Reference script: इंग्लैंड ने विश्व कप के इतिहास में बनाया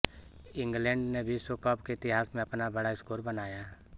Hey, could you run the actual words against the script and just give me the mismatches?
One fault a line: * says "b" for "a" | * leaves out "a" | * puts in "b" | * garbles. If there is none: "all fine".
* puts in "अपना बड़ा स्कोर"